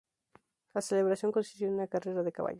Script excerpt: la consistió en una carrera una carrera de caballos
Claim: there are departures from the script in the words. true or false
true